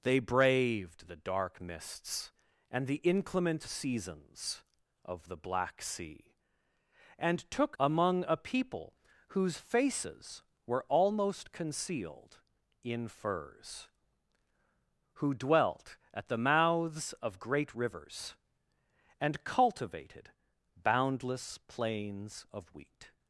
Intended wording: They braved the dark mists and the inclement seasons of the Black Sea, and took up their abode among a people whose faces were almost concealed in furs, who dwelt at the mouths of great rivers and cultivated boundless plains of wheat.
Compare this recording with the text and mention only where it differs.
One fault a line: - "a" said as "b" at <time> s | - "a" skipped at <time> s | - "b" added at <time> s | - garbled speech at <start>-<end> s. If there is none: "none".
- "up their abode" skipped at 7.8 s